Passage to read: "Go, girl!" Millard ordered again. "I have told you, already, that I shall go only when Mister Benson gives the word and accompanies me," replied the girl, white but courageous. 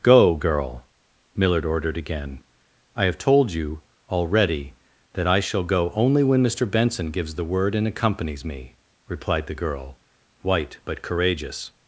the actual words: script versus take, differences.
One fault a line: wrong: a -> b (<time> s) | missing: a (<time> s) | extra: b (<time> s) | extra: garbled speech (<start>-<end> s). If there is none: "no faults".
no faults